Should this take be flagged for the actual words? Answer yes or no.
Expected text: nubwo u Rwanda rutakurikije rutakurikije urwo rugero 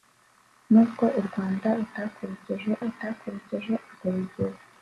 no